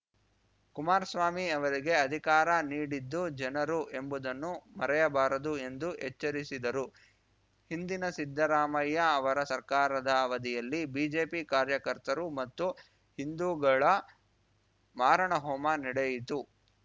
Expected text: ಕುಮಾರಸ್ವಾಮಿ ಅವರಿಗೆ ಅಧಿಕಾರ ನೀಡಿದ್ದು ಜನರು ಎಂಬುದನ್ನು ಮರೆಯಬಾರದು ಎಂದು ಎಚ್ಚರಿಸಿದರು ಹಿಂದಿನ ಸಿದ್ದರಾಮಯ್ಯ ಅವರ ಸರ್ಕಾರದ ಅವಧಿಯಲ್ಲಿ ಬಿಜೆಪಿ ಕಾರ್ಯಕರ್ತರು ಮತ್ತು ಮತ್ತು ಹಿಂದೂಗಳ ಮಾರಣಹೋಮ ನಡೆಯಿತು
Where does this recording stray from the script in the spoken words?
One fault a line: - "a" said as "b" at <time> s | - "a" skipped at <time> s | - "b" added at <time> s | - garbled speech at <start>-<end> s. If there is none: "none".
- "ಮತ್ತು" skipped at 12.7 s